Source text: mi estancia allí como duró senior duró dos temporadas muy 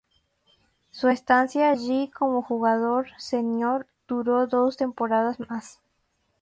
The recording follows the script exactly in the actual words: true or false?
false